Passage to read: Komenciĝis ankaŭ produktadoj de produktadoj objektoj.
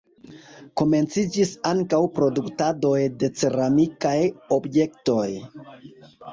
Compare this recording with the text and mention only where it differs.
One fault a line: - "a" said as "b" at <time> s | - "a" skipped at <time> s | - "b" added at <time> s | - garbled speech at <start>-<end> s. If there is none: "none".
- "produktadoj" said as "ceramikaj" at 3.4 s